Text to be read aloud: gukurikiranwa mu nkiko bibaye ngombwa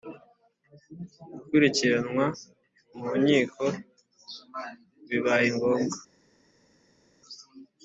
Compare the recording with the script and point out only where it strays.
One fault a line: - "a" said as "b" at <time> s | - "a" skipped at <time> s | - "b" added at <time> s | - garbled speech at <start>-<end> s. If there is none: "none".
none